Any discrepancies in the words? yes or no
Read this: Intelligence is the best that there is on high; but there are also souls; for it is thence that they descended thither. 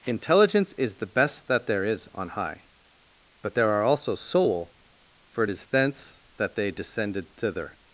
yes